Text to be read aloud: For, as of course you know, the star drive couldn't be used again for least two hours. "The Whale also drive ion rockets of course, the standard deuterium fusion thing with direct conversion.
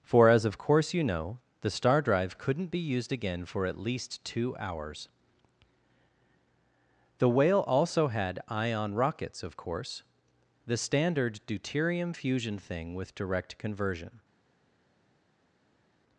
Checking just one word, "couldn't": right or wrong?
right